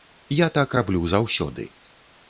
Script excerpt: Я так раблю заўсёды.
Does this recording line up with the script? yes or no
yes